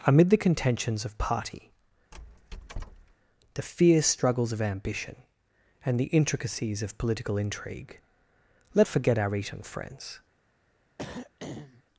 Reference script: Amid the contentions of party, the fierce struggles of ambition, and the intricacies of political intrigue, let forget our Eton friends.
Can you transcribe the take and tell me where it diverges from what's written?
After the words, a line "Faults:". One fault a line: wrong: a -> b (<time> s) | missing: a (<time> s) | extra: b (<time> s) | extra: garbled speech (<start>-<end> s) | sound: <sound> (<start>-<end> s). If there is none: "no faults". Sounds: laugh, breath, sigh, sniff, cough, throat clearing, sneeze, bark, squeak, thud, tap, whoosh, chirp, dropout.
Amid the contentions of party, the fierce struggles of ambition, and the intricacies of political intrigue, let forget our Eton friends.
Faults:
sound: squeak (2.1-3.2 s)
sound: throat clearing (11.0-11.8 s)